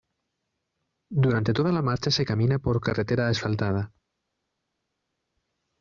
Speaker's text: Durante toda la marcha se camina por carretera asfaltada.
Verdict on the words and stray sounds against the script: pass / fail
pass